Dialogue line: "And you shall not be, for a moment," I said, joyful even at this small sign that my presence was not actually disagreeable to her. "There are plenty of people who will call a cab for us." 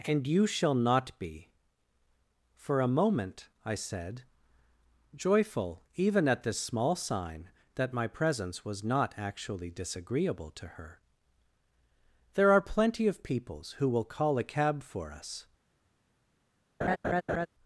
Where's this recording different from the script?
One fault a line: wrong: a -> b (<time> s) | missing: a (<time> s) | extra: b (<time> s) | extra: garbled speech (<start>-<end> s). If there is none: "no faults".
wrong: people -> peoples (13.2 s)